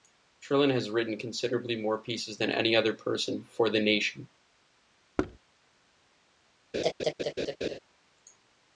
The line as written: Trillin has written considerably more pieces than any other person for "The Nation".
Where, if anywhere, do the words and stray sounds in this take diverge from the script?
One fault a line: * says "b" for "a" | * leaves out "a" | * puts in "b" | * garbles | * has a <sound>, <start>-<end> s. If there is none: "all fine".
* has a thud, 5.2-5.4 s
* has a laugh, 6.7-7.8 s